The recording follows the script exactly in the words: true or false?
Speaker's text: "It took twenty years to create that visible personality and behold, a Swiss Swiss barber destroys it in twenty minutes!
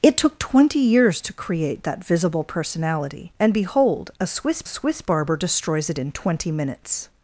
true